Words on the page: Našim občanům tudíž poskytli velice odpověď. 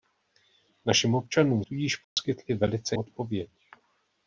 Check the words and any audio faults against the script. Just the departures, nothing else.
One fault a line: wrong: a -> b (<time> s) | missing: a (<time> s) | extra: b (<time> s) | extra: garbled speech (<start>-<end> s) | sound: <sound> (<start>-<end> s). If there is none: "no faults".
sound: dropout (2.0-2.2 s)